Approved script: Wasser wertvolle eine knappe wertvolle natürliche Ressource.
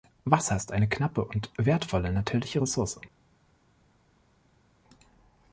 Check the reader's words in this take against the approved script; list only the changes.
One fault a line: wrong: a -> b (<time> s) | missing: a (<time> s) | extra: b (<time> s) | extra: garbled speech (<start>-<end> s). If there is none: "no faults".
wrong: wertvolle -> ist (0.6 s)
extra: und (1.2 s)